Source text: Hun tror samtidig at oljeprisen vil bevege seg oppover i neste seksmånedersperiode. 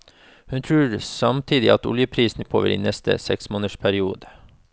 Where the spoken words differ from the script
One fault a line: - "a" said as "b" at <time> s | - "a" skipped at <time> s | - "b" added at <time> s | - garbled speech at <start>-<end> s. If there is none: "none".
- "vil bevege seg" skipped at 2.5 s